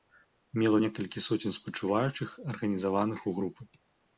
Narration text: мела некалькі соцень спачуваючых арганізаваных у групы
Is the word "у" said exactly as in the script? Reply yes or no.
yes